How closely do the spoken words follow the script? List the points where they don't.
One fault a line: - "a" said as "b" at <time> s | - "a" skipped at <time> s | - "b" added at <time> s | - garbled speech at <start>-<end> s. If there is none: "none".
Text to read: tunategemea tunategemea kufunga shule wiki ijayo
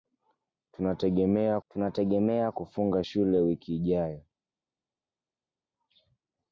none